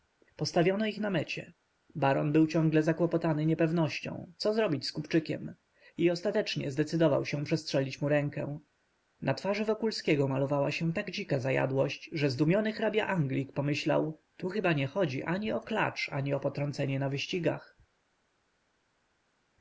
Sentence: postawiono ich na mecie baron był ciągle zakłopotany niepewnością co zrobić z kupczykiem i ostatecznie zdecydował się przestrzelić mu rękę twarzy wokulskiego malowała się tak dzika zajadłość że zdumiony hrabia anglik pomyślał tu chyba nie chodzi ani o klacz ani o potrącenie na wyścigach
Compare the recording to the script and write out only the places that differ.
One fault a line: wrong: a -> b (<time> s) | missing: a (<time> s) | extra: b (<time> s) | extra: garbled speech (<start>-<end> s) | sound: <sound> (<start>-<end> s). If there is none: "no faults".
extra: na (9.2 s)